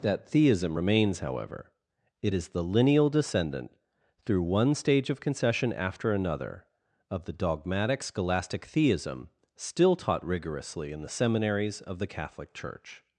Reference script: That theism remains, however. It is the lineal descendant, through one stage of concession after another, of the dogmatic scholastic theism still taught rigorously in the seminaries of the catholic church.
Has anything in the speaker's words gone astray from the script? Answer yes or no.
no